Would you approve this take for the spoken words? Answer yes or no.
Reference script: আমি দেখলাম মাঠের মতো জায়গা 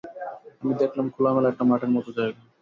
no